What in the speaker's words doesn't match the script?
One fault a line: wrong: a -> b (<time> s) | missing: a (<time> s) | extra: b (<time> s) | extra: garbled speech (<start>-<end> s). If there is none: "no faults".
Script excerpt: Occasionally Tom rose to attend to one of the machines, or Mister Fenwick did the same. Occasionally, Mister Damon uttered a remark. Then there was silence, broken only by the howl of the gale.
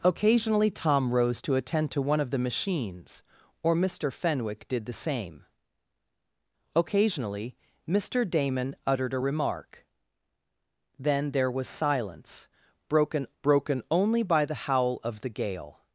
extra: broken (13.4 s)